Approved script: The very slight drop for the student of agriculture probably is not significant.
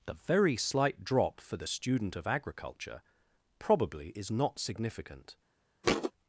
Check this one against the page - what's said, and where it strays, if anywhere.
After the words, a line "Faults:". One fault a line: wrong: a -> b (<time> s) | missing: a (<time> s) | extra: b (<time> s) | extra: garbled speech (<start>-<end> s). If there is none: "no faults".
The very slight drop for the student of agriculture probably is not significant.
Faults:
no faults